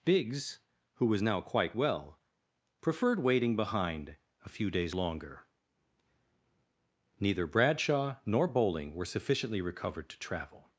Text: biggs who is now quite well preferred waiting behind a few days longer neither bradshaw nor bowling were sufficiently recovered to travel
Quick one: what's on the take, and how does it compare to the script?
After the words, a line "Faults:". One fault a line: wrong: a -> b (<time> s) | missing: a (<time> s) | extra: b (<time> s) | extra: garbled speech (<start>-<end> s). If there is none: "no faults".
biggs who was now quite well preferred waiting behind a few days longer neither bradshaw nor bowling were sufficiently recovered to travel
Faults:
wrong: is -> was (1.1 s)